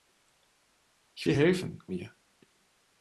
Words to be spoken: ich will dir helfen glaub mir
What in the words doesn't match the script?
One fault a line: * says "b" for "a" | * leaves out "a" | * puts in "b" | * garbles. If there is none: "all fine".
* leaves out "will"
* leaves out "glaub"